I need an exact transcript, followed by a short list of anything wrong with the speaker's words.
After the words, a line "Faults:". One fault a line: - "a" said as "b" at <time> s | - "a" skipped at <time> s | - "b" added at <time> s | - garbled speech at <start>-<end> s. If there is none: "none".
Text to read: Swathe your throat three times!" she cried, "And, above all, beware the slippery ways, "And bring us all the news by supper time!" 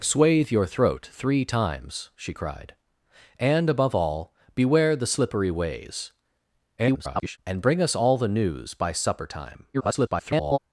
Swathe your throat three times!" she cried, "And, above all, beware the slippery ways, [garbled] "And bring us all the news by supper time!" [garbled]
Faults:
- garbled speech at 6.8-7.4 s
- garbled speech at 9.7-10.6 s